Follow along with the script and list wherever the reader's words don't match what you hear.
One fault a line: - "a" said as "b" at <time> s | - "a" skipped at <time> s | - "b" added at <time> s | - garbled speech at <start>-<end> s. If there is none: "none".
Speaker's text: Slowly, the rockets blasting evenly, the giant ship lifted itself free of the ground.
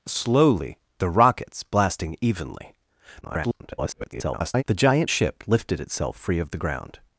- garbled speech at 3.2-4.6 s